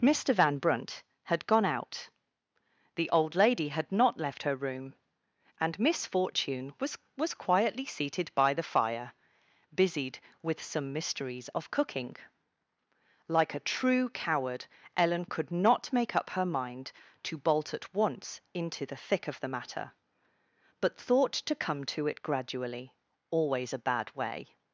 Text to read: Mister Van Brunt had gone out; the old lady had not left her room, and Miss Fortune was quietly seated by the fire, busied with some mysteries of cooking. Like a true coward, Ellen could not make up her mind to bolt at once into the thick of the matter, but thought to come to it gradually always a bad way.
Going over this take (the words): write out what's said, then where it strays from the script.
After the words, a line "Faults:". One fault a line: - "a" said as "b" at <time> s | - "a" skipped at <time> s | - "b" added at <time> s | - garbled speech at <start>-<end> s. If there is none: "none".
Mister Van Brunt had gone out; the old lady had not left her room, and Miss Fortune was was quietly seated by the fire, busied with some mysteries of cooking. Like a true coward, Ellen could not make up her mind to bolt at once into the thick of the matter, but thought to come to it gradually always a bad way.
Faults:
- "was" added at 7.2 s